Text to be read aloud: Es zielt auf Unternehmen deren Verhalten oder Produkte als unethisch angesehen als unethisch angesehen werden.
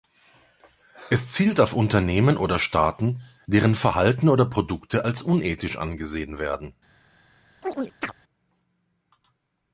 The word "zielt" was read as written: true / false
true